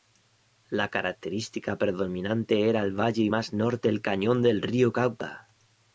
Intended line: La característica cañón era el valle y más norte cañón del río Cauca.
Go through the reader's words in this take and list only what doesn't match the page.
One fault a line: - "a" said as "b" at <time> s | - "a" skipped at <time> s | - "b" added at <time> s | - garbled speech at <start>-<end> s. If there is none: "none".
- "cañón" said as "predominante" at 1.8 s
- "el" added at 3.9 s